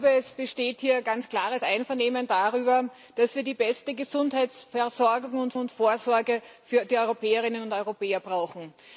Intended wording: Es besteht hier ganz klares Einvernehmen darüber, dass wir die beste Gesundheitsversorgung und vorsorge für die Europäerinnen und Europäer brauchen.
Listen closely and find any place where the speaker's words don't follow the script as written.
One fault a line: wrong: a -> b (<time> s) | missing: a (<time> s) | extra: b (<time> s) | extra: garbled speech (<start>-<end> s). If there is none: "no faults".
extra: und (5.6 s)